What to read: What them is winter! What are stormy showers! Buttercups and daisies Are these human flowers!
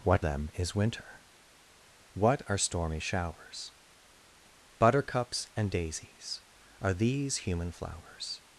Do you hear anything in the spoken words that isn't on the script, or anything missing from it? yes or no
no